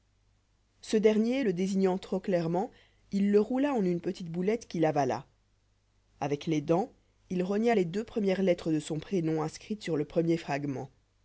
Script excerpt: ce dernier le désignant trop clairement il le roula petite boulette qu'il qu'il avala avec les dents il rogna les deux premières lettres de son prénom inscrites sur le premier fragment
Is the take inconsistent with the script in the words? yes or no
yes